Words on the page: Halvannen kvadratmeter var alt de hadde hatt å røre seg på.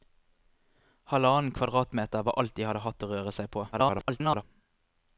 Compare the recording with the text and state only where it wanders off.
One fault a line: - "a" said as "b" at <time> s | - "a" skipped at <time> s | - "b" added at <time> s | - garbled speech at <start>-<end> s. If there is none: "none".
- garbled speech at 3.7-4.4 s